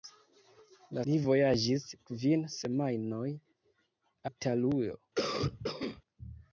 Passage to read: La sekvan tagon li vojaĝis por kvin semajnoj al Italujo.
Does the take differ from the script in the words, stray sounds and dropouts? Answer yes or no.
yes